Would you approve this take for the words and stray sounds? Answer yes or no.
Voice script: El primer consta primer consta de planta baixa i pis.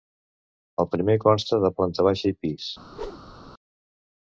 no